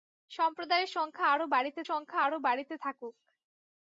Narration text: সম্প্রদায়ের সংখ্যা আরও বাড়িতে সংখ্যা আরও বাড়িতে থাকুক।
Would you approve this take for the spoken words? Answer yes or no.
yes